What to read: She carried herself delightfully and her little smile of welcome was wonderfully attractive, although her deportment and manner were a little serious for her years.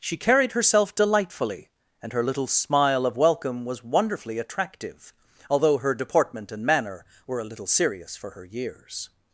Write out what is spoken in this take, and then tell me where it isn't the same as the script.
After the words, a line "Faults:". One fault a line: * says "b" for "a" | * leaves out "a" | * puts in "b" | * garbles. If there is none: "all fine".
She carried herself delightfully and her little smile of welcome was wonderfully attractive, although her deportment and manner were a little serious for her years.
Faults:
all fine